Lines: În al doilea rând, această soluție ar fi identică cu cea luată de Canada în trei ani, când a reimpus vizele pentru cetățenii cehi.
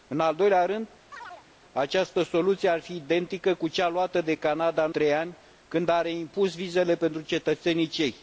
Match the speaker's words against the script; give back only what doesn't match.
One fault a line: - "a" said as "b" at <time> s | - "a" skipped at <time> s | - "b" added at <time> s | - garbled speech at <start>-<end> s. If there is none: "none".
none